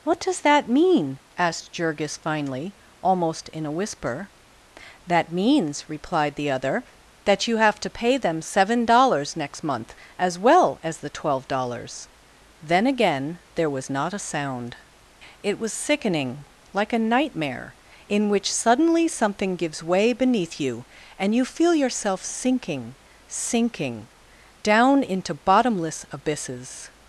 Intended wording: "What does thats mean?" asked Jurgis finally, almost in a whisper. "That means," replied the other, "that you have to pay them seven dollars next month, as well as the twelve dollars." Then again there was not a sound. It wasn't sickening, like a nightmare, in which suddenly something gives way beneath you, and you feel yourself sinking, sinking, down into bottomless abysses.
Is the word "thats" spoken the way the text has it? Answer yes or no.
no